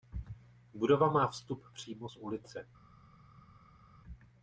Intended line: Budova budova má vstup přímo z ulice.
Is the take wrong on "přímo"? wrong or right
right